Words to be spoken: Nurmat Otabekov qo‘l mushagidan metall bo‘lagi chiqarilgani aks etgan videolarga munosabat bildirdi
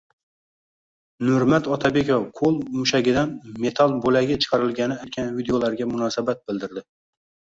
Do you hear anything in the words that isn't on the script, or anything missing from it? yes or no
yes